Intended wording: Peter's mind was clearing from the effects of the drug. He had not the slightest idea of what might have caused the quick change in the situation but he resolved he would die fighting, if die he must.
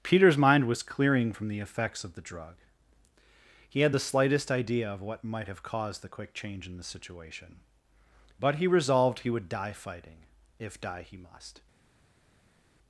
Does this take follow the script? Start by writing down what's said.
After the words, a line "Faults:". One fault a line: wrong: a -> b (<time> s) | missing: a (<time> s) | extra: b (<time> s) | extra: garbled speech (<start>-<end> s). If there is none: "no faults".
Peter's mind was clearing from the effects of the drug. He had the slightest idea of what might have caused the quick change in the situation but he resolved he would die fighting, if die he must.
Faults:
missing: not (3.9 s)